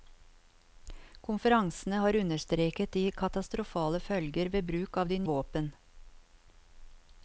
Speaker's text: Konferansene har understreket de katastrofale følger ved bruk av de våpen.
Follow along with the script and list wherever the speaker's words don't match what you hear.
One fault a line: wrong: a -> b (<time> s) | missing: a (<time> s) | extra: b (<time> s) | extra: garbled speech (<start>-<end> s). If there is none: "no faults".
no faults